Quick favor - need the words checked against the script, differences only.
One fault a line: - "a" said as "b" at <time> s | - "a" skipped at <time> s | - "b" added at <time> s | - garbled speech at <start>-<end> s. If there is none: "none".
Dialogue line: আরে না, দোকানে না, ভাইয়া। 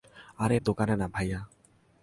- "না" skipped at 0.6 s